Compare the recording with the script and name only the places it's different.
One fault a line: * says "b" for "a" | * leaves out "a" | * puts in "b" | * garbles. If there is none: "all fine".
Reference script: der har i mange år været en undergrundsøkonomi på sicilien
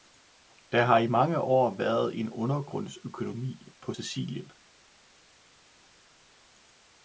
all fine